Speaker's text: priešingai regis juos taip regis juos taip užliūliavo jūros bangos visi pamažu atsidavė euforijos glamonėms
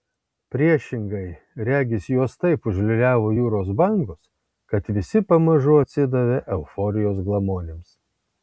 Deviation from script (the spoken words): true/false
true